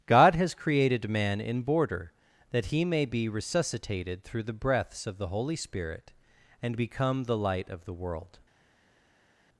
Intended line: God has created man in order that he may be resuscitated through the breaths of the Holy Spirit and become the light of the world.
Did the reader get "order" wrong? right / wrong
wrong